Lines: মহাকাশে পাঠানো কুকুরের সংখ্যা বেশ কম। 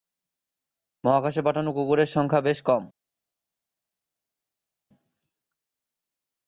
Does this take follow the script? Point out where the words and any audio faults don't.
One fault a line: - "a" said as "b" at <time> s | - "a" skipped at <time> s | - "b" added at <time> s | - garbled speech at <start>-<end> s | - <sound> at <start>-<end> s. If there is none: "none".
none